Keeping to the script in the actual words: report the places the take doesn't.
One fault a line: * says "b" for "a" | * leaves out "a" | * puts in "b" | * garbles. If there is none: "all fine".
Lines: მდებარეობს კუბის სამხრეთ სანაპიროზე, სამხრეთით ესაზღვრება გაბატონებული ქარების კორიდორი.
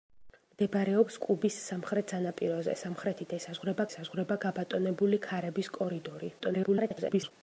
* puts in "ესაზღვრება"
* garbles